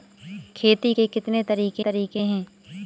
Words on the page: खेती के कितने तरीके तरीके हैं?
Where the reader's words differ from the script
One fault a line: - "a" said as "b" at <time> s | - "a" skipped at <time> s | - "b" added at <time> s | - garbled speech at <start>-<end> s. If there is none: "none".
none